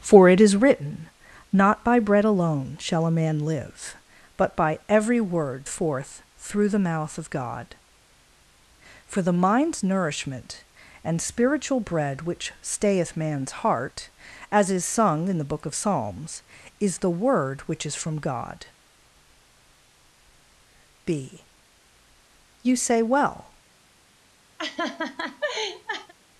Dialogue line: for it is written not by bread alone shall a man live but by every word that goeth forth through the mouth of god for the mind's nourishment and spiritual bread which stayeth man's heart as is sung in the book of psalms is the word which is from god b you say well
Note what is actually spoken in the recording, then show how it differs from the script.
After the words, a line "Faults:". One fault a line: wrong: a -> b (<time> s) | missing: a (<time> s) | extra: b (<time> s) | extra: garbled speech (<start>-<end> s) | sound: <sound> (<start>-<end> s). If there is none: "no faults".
for it is written not by bread alone shall a man live but by every word forth through the mouth of god for the mind's nourishment and spiritual bread which stayeth man's heart as is sung in the book of psalms is the word which is from god b you say well
Faults:
missing: that goeth (5.7 s)
sound: laugh (24.6-26.1 s)